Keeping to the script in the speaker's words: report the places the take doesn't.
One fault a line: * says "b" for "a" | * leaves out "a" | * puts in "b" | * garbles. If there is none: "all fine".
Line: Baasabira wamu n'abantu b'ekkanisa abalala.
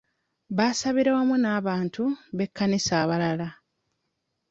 all fine